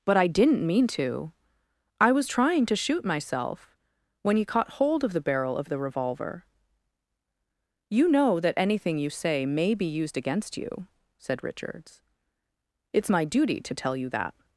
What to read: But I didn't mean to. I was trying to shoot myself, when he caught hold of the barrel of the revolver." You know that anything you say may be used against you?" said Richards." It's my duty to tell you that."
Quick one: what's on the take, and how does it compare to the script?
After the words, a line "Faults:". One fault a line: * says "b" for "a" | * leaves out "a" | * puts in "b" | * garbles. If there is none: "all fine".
But I didn't mean to. I was trying to shoot myself, when he caught hold of the barrel of the revolver." You know that anything you say may be used against you?" said Richards." It's my duty to tell you that."
Faults:
all fine